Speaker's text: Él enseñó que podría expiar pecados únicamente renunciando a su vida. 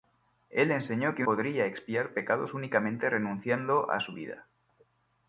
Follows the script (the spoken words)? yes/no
yes